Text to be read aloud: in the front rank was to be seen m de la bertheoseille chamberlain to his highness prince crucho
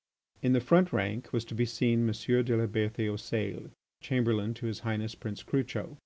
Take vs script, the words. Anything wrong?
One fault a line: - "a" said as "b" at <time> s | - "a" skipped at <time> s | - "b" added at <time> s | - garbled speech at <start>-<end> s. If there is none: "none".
none